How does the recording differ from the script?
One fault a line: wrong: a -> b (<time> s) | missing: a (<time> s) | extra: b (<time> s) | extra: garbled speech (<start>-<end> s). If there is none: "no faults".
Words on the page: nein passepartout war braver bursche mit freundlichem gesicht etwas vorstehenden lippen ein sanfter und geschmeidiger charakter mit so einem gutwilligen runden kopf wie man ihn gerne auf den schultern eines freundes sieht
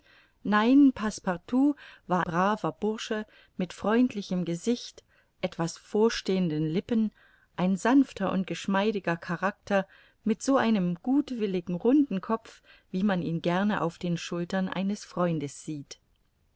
no faults